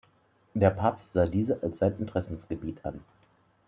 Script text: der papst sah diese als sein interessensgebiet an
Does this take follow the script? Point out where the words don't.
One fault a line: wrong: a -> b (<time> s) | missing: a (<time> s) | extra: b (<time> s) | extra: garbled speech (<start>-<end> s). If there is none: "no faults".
no faults